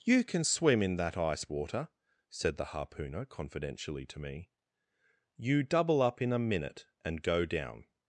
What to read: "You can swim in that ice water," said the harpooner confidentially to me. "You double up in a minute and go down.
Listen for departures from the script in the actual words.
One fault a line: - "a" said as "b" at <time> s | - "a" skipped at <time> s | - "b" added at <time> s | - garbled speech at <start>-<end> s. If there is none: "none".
none